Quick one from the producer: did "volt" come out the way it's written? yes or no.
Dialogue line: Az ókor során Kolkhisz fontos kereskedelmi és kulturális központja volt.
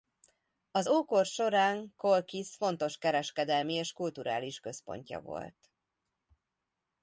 yes